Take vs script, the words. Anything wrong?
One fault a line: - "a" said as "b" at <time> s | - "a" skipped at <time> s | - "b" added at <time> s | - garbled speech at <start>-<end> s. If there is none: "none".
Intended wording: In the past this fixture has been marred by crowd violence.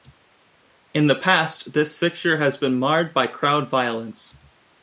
none